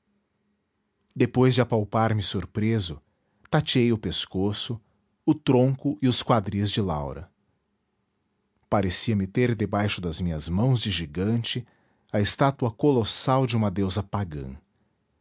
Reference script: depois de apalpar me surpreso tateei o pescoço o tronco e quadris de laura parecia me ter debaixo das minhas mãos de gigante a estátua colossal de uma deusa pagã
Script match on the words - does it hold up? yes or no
no